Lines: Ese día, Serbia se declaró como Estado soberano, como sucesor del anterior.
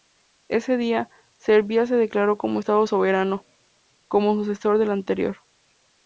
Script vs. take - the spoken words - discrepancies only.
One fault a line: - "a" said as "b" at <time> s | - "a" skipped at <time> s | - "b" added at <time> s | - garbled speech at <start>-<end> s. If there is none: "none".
none